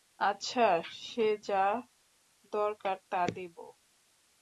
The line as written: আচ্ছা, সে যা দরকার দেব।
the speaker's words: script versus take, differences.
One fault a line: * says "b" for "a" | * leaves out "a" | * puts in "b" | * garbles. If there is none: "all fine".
* puts in "তা"